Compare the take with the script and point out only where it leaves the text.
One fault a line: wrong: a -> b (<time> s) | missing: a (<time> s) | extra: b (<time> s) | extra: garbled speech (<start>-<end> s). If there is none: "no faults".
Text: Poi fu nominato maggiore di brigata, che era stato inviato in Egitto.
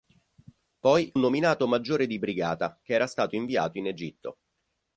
missing: fu (1.1 s)